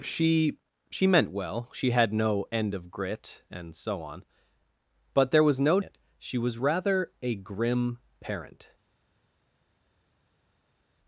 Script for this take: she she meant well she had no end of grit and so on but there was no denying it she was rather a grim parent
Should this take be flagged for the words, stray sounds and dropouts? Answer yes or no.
yes